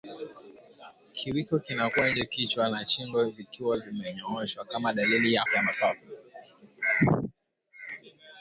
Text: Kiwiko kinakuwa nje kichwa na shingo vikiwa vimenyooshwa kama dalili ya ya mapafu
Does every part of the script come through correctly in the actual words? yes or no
yes